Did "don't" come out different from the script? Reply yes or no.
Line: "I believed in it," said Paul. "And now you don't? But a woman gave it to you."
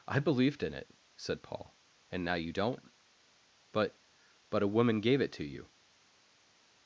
no